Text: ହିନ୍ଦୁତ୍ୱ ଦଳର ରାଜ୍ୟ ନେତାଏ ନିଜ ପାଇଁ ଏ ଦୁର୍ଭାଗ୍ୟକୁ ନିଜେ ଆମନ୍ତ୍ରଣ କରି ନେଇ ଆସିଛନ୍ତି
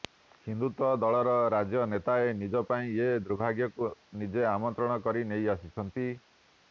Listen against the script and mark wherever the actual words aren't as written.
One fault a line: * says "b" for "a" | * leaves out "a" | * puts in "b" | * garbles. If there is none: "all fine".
all fine